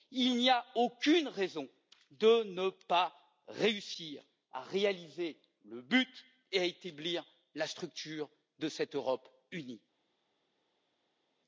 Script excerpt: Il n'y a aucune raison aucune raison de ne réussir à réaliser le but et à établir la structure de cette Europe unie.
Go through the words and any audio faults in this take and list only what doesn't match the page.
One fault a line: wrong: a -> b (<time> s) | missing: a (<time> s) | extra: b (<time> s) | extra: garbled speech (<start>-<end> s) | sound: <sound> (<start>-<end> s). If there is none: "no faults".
missing: aucune raison (1.7 s)
extra: pas (2.7 s)